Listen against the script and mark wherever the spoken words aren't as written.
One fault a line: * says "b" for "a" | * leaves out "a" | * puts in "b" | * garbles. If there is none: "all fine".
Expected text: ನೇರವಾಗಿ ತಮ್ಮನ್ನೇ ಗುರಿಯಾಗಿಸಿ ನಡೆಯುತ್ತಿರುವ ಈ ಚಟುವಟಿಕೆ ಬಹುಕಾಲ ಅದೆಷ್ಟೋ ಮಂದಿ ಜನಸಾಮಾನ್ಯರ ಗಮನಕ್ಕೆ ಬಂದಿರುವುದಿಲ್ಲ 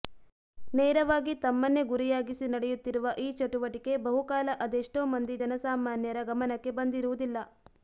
all fine